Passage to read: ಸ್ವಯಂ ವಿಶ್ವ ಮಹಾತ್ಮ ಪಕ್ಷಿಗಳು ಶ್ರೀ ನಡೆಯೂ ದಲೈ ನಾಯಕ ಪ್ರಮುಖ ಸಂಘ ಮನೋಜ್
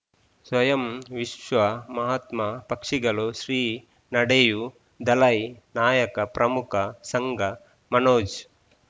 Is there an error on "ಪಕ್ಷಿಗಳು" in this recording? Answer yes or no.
no